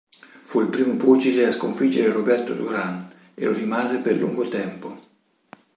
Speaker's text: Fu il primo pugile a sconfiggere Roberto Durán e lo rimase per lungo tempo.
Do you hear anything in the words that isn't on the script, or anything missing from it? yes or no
no